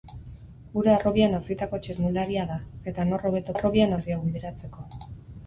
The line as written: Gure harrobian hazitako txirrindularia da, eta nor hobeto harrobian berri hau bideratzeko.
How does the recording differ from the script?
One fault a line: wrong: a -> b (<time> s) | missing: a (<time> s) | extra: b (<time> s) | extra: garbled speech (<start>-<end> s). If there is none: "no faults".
no faults